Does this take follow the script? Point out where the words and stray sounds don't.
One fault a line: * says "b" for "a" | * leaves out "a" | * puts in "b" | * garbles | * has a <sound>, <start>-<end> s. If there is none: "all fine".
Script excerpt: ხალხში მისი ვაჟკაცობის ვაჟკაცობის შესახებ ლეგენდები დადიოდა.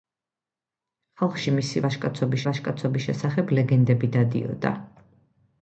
all fine